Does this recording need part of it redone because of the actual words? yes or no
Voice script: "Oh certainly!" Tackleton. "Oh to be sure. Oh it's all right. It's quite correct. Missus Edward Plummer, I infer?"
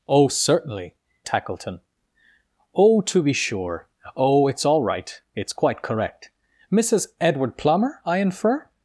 no